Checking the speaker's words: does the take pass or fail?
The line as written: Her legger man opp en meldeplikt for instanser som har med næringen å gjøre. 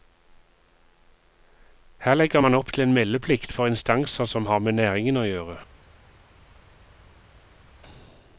fail